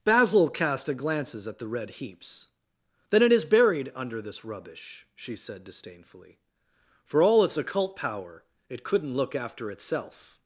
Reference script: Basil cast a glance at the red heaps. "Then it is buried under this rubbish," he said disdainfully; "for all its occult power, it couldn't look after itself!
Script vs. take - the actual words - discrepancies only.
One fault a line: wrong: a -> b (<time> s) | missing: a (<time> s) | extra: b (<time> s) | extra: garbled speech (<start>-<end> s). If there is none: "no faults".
wrong: glance -> glances (0.9 s)
wrong: he -> she (5.2 s)